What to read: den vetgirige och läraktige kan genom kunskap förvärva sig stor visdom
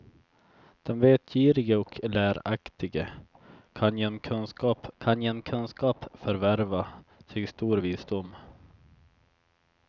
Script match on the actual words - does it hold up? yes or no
no